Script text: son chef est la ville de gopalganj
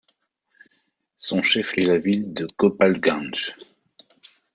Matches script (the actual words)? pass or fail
pass